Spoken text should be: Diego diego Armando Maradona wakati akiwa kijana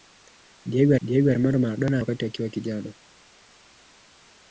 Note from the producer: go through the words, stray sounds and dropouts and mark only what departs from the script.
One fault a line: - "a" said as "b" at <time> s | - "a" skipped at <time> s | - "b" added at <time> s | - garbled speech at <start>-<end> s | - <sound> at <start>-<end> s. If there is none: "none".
none